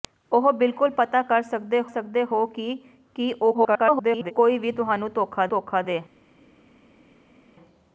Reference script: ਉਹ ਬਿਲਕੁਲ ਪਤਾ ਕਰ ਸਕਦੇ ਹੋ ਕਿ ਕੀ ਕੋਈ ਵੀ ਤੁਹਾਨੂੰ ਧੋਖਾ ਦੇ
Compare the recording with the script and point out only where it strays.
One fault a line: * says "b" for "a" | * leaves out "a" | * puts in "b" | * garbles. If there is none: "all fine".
* puts in "ਸਕਦੇ"
* garbles
* puts in "ਧੋਖਾ"